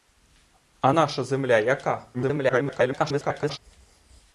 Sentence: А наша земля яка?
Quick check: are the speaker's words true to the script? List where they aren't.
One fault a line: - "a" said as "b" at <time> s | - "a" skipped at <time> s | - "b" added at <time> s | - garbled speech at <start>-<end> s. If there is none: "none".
- garbled speech at 2.1-3.6 s